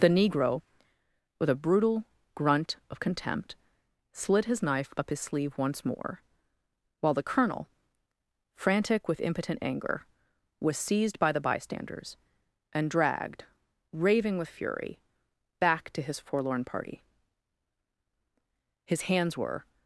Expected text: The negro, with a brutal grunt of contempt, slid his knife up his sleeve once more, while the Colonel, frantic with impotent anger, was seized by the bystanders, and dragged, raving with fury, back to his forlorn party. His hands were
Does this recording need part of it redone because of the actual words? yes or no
no